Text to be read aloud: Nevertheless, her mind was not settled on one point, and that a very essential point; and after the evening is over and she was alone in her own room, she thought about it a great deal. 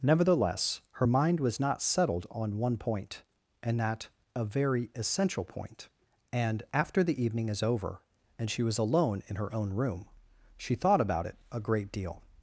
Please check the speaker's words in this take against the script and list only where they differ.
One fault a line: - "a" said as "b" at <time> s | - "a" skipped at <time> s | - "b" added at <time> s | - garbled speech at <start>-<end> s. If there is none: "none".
none